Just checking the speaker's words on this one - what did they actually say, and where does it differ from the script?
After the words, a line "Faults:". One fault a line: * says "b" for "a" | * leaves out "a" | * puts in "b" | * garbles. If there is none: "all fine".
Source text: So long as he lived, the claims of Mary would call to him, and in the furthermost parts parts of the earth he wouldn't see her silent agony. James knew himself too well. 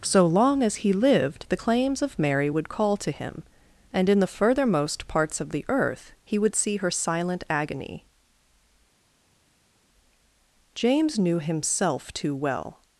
So long as he lived, the claims of Mary would call to him, and in the furthermost parts of the earth he would see her silent agony. James knew himself too well.
Faults:
* leaves out "parts"
* says "would" for "wouldn't"